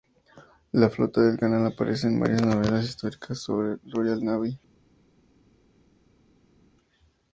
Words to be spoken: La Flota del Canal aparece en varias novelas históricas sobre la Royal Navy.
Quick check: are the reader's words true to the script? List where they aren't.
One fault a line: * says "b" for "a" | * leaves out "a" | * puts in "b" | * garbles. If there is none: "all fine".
all fine